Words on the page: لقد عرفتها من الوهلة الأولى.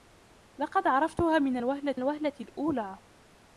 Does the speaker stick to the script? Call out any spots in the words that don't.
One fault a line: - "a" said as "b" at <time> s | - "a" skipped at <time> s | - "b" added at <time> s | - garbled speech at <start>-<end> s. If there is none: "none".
- "الوهلة" added at 1.9 s